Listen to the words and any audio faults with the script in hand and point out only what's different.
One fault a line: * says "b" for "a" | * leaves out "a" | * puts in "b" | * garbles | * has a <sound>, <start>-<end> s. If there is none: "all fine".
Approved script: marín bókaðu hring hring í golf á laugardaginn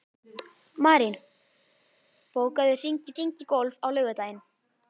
all fine